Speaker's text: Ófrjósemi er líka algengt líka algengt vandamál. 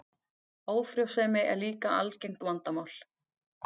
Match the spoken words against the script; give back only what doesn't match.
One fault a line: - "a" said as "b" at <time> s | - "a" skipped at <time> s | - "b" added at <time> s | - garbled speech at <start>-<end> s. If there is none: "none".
- "líka algengt" skipped at 2.5 s